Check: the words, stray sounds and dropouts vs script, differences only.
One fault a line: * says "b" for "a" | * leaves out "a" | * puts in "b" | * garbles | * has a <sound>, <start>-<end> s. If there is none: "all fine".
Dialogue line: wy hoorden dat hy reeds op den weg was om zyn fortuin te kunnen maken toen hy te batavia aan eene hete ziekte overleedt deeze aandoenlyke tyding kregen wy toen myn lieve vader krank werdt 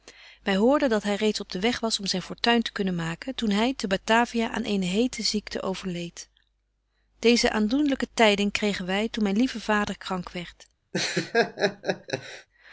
* has a laugh, 10.9-12.5 s